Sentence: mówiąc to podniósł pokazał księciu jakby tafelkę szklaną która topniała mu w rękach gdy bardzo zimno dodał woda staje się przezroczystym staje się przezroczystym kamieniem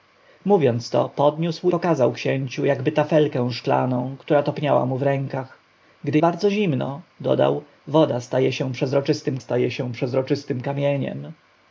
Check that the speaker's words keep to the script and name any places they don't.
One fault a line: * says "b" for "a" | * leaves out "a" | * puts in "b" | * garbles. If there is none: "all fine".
all fine